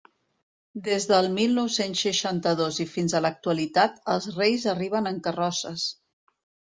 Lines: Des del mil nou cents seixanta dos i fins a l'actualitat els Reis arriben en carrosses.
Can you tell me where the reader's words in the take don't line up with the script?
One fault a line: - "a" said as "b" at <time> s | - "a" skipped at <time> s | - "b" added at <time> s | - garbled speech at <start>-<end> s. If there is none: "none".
none